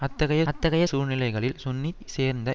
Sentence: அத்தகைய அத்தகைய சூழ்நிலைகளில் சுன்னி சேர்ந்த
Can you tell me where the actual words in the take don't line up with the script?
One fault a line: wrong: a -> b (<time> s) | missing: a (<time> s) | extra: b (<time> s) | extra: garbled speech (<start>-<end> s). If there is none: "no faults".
no faults